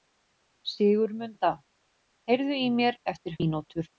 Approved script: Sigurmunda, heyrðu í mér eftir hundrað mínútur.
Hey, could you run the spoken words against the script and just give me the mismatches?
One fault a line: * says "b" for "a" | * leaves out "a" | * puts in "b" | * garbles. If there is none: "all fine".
* leaves out "hundrað"